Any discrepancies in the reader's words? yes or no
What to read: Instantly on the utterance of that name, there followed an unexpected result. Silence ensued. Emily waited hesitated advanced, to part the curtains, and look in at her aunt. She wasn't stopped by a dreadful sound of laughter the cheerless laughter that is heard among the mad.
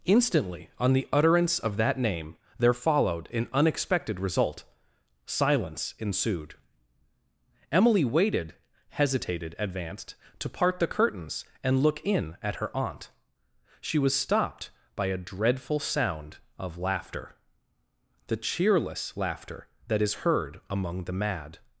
yes